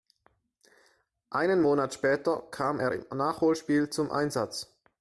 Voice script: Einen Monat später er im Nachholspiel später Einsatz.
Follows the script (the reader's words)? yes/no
no